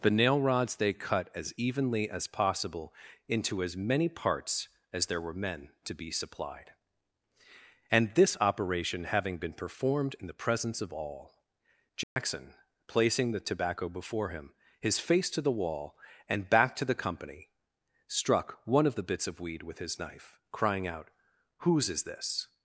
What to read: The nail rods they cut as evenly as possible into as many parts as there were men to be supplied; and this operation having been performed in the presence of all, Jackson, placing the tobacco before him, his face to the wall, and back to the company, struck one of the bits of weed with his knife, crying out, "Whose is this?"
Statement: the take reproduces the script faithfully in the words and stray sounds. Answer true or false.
false